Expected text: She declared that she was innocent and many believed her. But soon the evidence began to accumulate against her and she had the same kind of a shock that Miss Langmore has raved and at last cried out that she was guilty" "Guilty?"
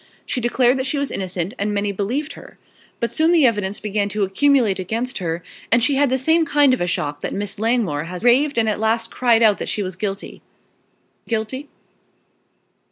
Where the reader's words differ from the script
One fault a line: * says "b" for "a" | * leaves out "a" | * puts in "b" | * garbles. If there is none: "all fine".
all fine